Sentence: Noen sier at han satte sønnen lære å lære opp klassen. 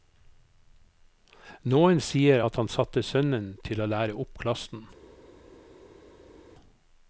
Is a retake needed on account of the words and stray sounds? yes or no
yes